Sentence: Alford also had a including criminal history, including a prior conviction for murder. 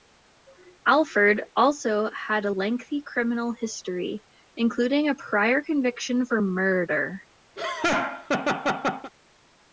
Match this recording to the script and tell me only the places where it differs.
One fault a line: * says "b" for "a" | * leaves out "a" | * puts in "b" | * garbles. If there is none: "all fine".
* says "lengthy" for "including"